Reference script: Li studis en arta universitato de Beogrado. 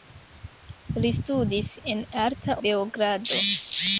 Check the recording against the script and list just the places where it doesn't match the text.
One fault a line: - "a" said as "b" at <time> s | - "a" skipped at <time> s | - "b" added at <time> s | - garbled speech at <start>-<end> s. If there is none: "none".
- "universitato de" skipped at 2.6 s